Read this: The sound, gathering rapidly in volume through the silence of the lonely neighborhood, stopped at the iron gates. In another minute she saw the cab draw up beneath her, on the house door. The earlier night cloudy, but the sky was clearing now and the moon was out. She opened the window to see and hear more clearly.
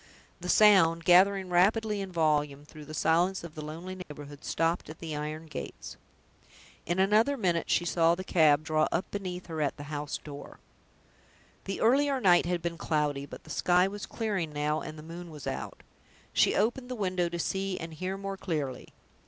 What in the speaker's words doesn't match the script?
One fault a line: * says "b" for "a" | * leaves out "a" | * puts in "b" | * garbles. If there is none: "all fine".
* says "at" for "on"
* puts in "had been"